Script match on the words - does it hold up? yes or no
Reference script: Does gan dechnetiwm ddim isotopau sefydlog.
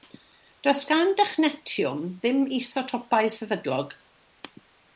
yes